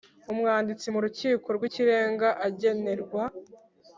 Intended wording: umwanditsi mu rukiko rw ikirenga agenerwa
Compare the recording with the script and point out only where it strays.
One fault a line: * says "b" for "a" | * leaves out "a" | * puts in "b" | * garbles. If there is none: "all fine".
all fine